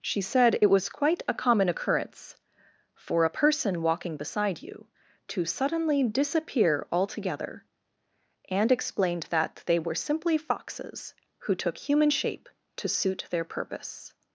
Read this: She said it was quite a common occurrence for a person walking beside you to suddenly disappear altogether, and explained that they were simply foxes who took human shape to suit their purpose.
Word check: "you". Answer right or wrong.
right